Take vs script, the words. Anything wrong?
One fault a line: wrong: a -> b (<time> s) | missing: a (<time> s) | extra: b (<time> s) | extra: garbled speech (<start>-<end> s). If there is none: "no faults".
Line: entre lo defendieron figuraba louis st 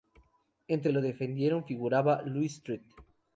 no faults